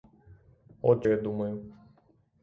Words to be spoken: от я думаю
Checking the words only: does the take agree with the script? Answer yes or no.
yes